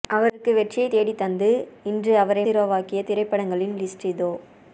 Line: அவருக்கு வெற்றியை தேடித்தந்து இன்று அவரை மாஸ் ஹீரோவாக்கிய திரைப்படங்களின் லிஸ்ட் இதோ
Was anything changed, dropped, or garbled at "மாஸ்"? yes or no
yes